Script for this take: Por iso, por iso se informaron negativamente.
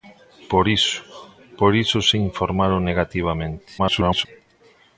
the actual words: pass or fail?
fail